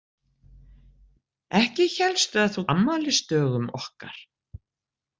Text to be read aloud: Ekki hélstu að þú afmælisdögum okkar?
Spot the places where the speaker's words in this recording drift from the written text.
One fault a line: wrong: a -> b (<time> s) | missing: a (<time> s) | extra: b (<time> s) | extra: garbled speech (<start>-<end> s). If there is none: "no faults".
no faults